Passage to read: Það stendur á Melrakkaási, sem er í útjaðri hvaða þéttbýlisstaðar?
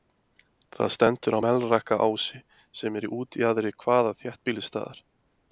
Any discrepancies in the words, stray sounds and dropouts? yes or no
no